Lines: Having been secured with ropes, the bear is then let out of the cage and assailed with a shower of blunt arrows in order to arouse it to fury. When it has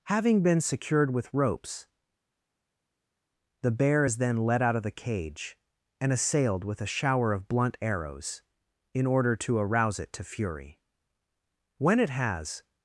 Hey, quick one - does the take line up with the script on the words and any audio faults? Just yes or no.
yes